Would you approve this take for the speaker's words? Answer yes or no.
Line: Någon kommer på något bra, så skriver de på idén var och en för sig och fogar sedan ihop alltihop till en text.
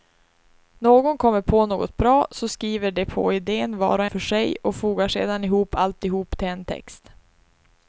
no